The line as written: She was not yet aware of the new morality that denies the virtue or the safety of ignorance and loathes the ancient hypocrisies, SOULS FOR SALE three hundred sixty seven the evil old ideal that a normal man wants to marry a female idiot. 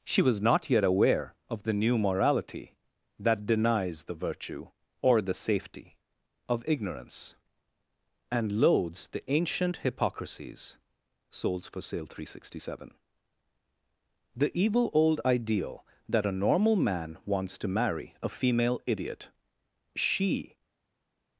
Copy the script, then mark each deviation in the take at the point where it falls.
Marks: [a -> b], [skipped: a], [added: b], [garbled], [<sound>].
She was not yet aware of the new morality that denies the virtue or the safety of ignorance and loathes the ancient hypocrisies, SOULS FOR SALE three hundred sixty seven the evil old ideal that a normal man wants to marry a female idiot. [added: She]